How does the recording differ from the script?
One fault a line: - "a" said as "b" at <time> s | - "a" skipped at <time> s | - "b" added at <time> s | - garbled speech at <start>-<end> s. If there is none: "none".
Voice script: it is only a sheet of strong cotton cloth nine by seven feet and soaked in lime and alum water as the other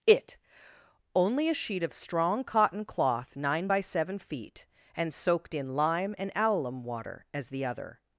- "is" skipped at 0.4 s